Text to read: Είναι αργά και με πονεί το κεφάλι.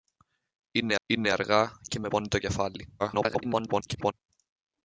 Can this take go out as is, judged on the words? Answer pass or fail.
fail